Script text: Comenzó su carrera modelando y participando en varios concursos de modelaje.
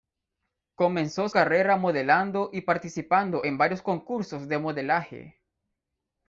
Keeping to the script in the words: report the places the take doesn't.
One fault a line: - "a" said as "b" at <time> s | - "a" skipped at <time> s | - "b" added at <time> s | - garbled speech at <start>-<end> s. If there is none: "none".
- "su" skipped at 1.3 s